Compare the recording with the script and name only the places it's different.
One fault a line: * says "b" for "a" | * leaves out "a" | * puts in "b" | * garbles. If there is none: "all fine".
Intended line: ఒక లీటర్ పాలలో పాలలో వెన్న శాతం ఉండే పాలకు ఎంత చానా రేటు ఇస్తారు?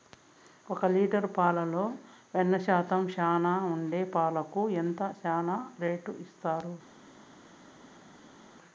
* leaves out "పాలలో"
* puts in "చానా"